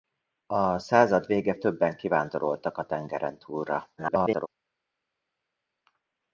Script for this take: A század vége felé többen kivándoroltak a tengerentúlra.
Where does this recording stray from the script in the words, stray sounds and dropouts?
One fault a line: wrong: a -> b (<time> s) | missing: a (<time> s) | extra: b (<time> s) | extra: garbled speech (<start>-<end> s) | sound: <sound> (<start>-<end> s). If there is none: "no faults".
missing: felé (1.6 s)
extra: garbled speech (4.0-4.5 s)